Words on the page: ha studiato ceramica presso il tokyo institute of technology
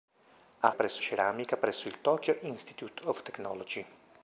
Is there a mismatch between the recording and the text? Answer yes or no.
yes